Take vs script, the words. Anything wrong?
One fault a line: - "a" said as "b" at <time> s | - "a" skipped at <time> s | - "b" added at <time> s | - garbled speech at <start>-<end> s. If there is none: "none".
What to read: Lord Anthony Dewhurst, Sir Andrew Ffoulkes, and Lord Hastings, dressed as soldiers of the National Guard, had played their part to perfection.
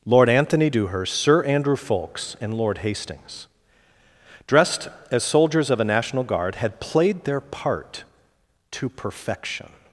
- "the" said as "a" at 5.8 s